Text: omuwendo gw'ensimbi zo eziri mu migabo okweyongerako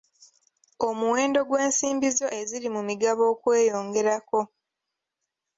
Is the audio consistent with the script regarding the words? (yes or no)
yes